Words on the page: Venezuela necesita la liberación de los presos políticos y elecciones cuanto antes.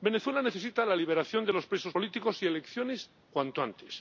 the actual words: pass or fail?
pass